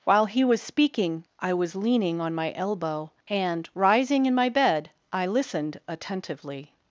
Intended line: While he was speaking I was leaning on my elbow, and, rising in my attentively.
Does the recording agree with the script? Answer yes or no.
no